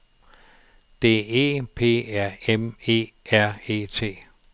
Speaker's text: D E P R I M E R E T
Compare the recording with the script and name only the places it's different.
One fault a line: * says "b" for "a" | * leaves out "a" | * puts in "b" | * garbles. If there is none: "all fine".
* leaves out "I"